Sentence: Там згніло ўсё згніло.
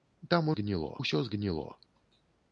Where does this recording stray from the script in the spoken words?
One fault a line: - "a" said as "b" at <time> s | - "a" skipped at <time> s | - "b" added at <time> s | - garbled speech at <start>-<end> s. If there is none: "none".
none